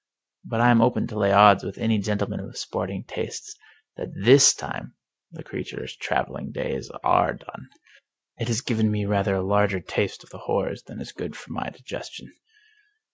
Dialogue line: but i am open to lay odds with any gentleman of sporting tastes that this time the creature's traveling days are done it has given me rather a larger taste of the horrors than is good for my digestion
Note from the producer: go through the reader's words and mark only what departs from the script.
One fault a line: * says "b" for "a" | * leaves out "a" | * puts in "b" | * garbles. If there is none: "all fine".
all fine